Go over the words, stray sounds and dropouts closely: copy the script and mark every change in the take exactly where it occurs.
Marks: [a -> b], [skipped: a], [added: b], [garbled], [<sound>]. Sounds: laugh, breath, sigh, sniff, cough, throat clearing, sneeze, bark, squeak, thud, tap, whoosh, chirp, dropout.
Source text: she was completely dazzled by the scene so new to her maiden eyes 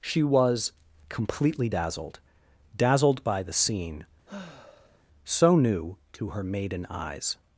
she was completely dazzled [added: dazzled] by the scene [sigh] so new to her maiden eyes